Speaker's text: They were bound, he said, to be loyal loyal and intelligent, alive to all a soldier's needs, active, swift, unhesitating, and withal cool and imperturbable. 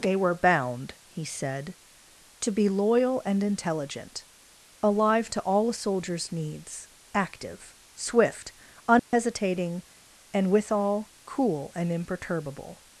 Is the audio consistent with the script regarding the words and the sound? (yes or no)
no